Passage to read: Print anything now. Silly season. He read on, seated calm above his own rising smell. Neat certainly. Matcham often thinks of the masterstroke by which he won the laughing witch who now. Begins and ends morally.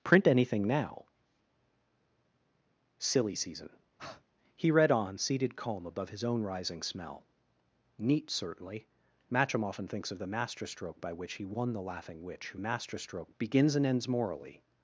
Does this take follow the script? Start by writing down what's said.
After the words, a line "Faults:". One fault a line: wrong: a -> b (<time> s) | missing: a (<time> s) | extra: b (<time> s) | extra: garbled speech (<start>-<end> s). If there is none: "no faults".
Print anything now. Silly season. He read on, seated calm above his own rising smell. Neat certainly. Matcham often thinks of the masterstroke by which he won the laughing witch who masterstroke. Begins and ends morally.
Faults:
wrong: now -> masterstroke (12.6 s)